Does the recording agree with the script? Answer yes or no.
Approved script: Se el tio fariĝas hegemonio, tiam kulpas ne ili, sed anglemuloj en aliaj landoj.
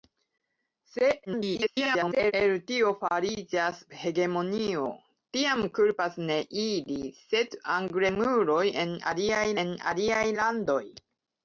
no